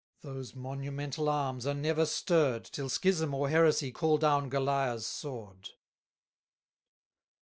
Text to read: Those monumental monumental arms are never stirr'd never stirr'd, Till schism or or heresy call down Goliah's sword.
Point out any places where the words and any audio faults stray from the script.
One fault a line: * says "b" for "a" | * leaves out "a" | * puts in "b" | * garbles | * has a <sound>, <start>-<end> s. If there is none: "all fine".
* leaves out "monumental"
* leaves out "never stirr'd"
* leaves out "or"